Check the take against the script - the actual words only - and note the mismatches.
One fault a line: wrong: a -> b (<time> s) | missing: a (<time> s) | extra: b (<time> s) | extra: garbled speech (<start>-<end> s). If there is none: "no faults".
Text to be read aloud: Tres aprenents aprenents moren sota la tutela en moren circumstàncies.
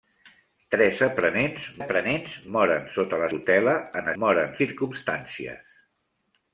no faults